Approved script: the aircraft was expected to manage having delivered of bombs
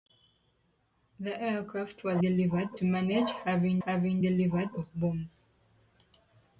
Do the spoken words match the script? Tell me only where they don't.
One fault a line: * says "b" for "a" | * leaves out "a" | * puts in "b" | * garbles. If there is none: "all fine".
* says "delivered" for "expected"
* puts in "having"